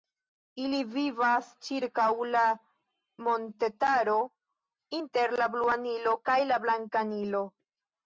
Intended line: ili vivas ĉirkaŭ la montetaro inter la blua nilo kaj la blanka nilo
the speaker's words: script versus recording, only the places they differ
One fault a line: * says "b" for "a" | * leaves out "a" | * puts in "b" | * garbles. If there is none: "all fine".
all fine